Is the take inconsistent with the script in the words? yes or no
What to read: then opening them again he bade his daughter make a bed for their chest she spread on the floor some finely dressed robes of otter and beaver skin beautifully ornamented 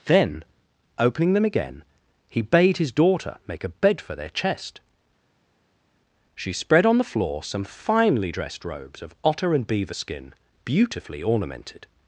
no